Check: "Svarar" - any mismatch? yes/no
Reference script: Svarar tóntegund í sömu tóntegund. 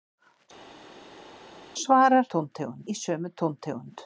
no